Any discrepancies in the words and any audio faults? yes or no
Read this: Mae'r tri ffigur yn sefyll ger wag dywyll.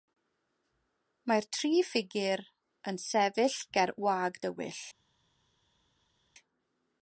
no